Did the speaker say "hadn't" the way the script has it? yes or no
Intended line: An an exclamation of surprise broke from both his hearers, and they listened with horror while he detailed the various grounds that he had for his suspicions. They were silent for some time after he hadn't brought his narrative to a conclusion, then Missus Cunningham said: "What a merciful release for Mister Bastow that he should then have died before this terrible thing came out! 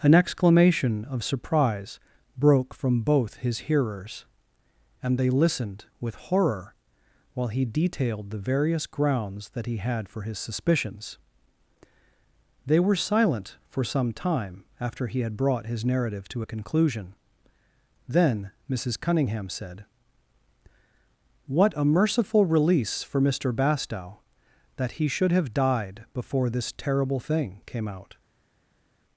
no